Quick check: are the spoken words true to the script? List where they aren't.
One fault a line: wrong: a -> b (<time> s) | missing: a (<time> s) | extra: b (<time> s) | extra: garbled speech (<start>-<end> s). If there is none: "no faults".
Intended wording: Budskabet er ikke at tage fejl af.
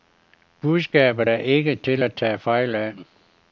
extra: til (1.7 s)